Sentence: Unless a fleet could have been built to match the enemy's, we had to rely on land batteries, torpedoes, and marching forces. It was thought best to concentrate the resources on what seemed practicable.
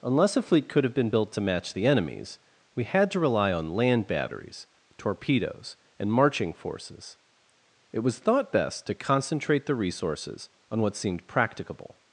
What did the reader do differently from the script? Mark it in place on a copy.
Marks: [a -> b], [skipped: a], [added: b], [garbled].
Unless a fleet could have been built to match the enemy's, we had to rely on land batteries, torpedoes, and marching forces. It was thought best to concentrate the resources on what seemed practicable.